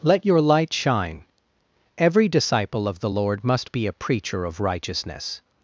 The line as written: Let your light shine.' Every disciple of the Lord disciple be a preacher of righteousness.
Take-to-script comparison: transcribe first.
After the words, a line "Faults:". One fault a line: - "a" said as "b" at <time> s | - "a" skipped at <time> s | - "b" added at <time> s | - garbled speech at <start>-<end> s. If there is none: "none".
Let your light shine.' Every disciple of the Lord must be a preacher of righteousness.
Faults:
- "disciple" said as "must" at 3.4 s